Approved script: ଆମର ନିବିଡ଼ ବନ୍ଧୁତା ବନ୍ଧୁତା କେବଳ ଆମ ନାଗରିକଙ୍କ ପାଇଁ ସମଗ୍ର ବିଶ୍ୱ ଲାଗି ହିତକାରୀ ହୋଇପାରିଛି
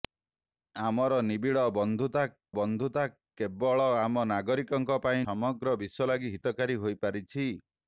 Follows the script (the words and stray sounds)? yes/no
yes